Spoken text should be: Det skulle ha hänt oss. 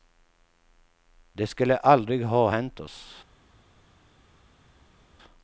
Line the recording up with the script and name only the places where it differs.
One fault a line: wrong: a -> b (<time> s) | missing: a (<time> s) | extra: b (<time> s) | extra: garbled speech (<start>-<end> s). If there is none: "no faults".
extra: aldrig (1.8 s)